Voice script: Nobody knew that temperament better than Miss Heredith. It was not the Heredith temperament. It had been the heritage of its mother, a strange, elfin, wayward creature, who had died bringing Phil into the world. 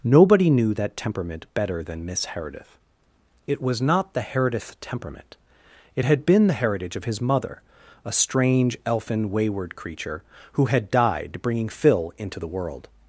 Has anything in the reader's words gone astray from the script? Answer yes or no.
yes